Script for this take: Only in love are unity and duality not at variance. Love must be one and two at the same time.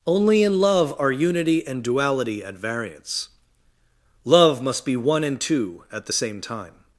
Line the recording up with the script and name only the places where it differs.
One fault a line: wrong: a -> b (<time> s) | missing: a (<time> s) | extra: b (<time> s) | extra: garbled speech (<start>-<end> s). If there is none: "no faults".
missing: not (2.4 s)